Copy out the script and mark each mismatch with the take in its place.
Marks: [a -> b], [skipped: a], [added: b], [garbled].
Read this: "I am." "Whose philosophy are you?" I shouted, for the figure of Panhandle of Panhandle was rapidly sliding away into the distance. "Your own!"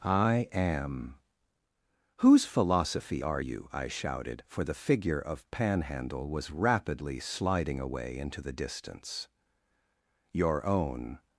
"I am." "Whose philosophy are you?" I shouted, for the figure of Panhandle [skipped: of Panhandle] was rapidly sliding away into the distance. "Your own!"